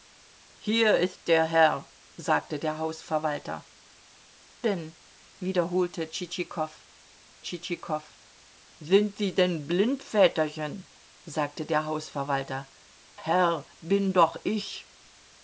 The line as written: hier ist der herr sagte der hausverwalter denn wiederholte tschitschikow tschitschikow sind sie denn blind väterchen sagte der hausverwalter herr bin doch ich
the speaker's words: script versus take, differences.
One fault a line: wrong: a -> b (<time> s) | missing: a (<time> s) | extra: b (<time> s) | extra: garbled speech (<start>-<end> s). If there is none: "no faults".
no faults